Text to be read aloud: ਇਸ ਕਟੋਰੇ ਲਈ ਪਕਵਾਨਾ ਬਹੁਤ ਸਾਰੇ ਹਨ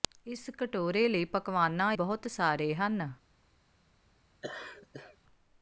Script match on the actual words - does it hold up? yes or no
yes